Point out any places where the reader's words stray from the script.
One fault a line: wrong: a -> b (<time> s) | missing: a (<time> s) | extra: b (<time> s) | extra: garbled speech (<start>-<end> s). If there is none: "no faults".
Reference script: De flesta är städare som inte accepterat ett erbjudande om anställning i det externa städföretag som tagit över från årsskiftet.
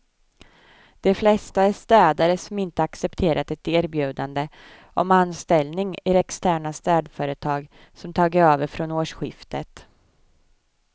no faults